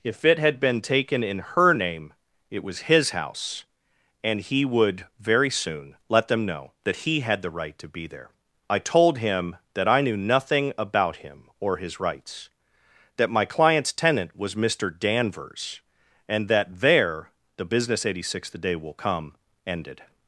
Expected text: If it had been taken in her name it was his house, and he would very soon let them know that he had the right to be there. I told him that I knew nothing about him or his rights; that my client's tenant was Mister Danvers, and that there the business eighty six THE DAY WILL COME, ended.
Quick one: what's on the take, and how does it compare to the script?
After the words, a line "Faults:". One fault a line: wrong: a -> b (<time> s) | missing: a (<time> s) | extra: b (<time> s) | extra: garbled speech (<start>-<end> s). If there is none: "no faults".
If it had been taken in her name it was his house, and he would very soon let them know that he had the right to be there. I told him that I knew nothing about him or his rights; that my client's tenant was Mister Danvers, and that there the business eighty six THE DAY WILL COME, ended.
Faults:
no faults